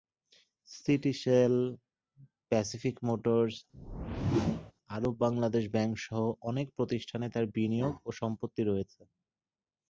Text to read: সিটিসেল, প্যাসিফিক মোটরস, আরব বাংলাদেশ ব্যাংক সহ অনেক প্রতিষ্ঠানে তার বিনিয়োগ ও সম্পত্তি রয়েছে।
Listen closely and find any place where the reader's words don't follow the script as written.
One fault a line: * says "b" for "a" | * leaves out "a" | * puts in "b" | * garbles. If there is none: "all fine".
all fine